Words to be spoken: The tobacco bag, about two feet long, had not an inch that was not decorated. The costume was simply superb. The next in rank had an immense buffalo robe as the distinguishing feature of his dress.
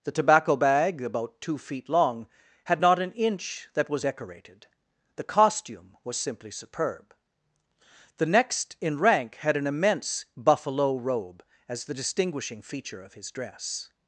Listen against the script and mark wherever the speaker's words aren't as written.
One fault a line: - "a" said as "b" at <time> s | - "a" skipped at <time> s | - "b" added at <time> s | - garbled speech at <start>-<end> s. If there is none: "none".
- "not" skipped at 4.0 s